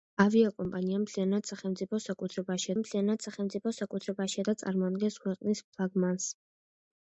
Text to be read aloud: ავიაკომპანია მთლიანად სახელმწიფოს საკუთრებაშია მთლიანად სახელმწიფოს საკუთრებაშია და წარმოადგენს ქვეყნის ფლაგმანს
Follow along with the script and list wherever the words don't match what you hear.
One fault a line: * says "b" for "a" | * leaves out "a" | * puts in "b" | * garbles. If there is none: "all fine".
all fine